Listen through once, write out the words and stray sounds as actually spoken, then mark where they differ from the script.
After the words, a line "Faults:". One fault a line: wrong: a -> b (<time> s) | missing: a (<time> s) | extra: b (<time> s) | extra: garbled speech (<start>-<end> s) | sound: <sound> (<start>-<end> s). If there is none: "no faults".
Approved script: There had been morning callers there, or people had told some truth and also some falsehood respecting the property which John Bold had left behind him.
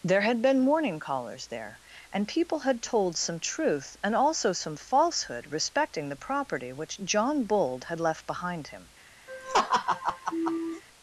There had been morning callers there, and people had told some truth and also some falsehood respecting the property which John Bold had left behind him.
Faults:
wrong: or -> and (2.1 s)
sound: laugh (9.3-10.8 s)